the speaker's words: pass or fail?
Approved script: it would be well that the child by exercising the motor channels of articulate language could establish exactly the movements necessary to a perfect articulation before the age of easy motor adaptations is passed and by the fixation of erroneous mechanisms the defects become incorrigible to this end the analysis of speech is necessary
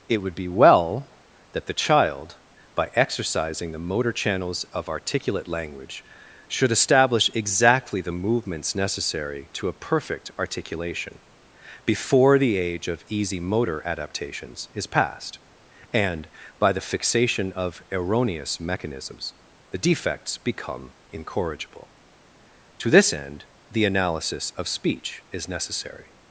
fail